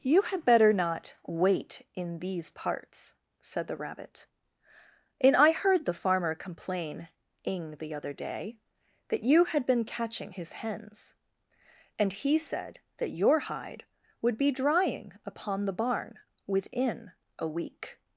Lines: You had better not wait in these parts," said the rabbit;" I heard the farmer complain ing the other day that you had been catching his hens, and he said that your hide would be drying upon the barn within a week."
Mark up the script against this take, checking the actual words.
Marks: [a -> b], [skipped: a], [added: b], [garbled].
You had better not wait in these parts," said the rabbit;" [added: and] I heard the farmer complain ing the other day that you had been catching his hens, and he said that your hide would be drying upon the barn within a week."